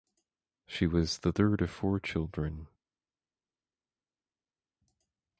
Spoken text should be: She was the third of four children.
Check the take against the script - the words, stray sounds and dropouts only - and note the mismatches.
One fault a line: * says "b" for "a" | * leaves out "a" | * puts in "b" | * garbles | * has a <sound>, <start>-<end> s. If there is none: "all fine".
all fine